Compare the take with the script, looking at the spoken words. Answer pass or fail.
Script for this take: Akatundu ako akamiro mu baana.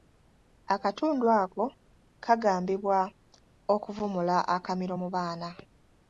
fail